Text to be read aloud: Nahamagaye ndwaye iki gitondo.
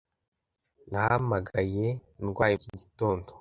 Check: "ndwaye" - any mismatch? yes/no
no